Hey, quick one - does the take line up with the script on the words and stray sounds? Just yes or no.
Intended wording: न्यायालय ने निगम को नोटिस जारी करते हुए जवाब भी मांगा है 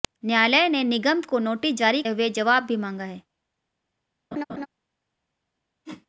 no